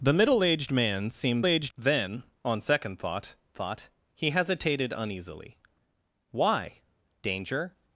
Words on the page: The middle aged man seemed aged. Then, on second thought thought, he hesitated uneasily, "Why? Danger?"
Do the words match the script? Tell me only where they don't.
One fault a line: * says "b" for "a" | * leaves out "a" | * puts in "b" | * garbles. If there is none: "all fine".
all fine